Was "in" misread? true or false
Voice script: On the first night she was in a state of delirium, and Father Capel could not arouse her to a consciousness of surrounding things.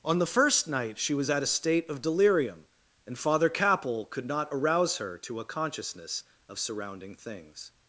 true